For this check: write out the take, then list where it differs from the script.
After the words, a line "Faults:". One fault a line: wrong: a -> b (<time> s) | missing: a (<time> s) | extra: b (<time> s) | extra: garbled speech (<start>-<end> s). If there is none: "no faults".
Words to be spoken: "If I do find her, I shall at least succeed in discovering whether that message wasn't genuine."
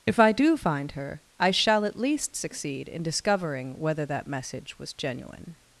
"If I do find her, I shall at least succeed in discovering whether that message was genuine."
Faults:
wrong: wasn't -> was (4.8 s)